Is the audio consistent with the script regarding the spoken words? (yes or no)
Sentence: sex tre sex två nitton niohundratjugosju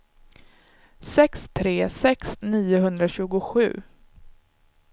no